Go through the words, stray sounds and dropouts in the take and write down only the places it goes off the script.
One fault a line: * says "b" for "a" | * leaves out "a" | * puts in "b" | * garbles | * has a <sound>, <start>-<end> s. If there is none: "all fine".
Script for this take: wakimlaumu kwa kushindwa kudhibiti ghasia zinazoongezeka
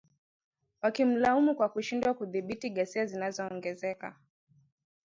all fine